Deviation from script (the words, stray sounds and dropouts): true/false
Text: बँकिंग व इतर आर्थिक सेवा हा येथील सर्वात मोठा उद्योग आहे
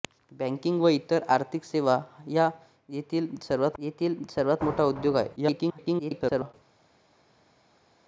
true